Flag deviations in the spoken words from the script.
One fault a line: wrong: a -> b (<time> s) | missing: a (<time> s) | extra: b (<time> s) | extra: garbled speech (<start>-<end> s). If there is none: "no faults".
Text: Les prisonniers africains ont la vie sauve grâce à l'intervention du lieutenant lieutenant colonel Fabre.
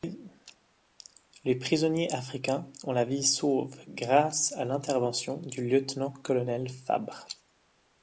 missing: lieutenant (6.1 s)